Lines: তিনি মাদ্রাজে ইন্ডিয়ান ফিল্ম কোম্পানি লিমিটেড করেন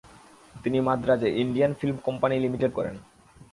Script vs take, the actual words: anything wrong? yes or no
no